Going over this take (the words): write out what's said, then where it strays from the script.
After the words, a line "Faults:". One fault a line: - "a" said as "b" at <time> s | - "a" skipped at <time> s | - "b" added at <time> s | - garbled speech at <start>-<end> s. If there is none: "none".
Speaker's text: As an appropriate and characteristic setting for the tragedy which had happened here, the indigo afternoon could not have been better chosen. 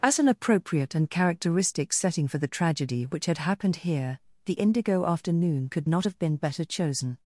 As an appropriate and characteristic setting for the tragedy which had happened here, the indigo afternoon could not have been better chosen.
Faults:
none